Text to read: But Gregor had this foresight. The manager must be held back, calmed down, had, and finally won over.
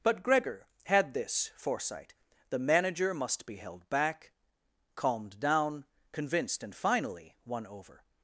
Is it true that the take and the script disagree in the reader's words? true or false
true